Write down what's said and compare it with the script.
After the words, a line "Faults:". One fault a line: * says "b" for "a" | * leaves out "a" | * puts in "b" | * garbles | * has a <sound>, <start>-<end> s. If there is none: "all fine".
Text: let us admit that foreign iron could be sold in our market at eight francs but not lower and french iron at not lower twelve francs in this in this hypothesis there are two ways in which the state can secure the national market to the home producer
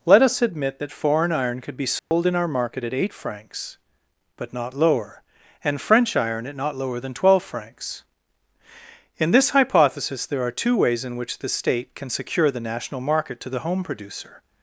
let us admit that foreign iron could be sold in our market at eight francs but not lower and french iron at not lower than twelve francs in this hypothesis there are two ways in which the state can secure the national market to the home producer
Faults:
* has a dropout, 2.0-2.1 s
* puts in "than"
* leaves out "in this"